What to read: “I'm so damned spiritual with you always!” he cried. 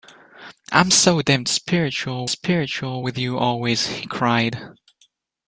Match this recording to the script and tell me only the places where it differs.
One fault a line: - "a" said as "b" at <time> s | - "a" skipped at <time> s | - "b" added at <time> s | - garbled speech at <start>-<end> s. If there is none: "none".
- "spiritual" added at 2.3 s